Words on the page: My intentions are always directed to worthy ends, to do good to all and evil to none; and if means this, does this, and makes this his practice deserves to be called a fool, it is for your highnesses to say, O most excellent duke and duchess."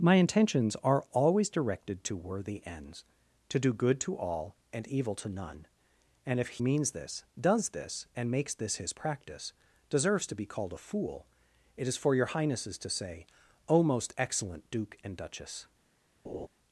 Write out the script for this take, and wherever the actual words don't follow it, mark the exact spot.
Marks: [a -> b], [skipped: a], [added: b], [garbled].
My intentions are always directed to worthy ends, to do good to all and evil to none; and if means this, does this, and makes this his practice deserves to be called a fool, it is for your highnesses to say, O most excellent duke and duchess."